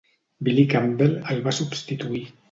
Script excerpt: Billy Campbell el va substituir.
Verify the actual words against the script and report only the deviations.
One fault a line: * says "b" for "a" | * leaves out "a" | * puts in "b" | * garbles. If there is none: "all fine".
all fine